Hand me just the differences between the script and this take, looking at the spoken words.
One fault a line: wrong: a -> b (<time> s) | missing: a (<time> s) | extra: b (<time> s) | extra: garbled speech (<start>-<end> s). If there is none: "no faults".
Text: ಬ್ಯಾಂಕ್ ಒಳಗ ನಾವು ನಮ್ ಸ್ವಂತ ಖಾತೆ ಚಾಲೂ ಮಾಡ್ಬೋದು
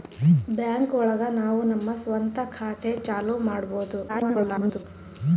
extra: garbled speech (4.1-4.8 s)